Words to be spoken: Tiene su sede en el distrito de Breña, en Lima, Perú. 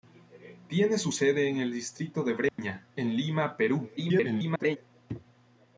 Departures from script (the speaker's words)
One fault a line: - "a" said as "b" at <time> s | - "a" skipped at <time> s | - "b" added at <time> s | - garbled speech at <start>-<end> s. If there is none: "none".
- garbled speech at 4.0-4.8 s